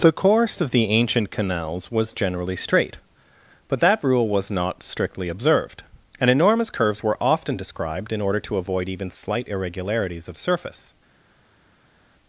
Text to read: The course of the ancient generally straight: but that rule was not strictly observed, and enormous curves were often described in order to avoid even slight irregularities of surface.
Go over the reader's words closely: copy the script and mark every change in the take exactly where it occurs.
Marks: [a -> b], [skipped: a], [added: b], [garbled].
The course of the ancient [added: canals was] generally straight: but that rule was not strictly observed, and enormous curves were often described in order to avoid even slight irregularities of surface.